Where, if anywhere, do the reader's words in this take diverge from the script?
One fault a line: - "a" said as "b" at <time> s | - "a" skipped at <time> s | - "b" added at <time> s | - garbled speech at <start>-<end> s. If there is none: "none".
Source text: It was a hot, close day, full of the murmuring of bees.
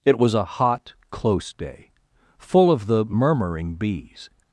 - "of" skipped at 3.7 s